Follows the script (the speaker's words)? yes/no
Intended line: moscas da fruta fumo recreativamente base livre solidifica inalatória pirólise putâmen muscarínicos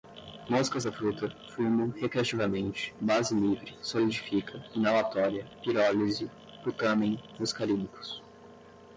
yes